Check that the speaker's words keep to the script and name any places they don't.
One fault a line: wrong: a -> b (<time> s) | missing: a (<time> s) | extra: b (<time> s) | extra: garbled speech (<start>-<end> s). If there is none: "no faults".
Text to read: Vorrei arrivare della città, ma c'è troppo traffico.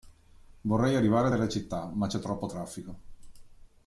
no faults